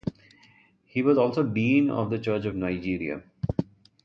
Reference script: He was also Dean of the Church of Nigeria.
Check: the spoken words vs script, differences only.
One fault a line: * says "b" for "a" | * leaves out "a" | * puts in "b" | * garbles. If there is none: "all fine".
all fine